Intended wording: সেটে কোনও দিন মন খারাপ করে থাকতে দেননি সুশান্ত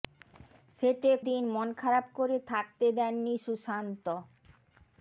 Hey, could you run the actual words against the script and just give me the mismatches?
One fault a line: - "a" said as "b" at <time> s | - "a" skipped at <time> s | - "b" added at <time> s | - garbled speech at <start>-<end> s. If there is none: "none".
- "কোনও" skipped at 1.1 s